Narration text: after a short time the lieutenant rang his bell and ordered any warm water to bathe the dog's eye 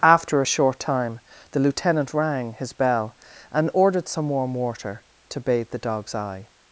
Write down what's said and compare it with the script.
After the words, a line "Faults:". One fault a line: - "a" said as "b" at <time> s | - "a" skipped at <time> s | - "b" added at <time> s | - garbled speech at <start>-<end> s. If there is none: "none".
after a short time the lieutenant rang his bell and ordered some warm water to bathe the dog's eye
Faults:
- "any" said as "some" at 4.1 s